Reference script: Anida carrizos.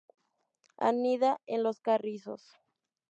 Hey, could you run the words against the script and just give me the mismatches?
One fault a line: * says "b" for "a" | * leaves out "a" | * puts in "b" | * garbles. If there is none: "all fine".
* puts in "en los"